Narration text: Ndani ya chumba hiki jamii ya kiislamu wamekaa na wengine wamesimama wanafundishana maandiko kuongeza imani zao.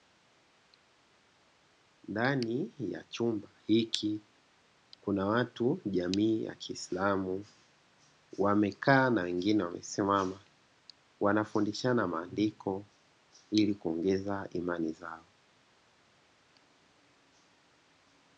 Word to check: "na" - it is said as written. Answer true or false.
true